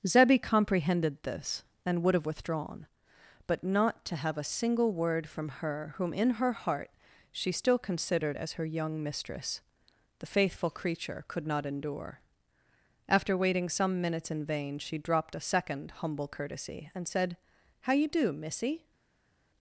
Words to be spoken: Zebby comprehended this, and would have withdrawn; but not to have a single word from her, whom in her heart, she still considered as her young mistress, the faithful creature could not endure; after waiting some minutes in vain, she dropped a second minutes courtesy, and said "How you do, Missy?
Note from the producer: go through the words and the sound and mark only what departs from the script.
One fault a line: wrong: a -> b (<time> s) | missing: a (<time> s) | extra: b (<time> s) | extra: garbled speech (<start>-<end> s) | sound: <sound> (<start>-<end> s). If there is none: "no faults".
wrong: minutes -> humble (16.0 s)